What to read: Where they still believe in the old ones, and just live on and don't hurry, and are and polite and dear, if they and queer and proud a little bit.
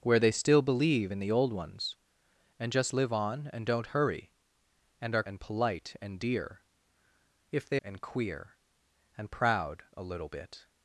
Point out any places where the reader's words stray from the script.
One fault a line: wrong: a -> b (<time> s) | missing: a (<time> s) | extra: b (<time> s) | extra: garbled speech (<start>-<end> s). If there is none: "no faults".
no faults